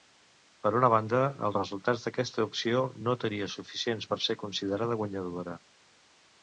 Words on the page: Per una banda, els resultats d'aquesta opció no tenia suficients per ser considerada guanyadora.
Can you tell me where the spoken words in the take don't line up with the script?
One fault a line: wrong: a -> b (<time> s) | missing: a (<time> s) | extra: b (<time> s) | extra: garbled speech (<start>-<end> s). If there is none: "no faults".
no faults